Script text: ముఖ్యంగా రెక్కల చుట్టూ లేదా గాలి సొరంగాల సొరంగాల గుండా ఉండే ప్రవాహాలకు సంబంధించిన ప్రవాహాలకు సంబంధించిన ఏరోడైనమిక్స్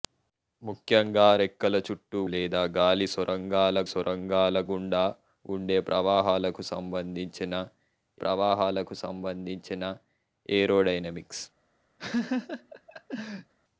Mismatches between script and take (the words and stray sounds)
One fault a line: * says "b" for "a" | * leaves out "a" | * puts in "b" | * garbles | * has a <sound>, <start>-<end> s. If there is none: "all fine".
* has a laugh, 12.0-13.5 s